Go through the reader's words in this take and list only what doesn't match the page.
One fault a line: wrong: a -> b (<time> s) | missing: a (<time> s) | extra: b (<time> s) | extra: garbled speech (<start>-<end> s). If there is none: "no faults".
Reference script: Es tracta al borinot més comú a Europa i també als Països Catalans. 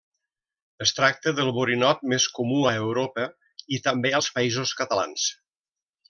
wrong: al -> del (1.4 s)